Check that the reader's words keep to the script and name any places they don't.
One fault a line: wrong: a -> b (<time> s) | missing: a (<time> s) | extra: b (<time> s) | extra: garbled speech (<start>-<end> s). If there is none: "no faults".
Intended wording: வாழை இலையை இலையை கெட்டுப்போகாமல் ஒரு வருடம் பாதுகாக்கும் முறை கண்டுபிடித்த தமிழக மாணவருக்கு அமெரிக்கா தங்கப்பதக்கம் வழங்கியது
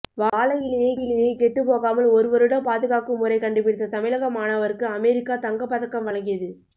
no faults